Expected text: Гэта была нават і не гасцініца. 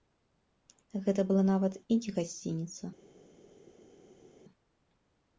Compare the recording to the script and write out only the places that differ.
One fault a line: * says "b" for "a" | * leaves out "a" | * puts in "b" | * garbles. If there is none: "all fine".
all fine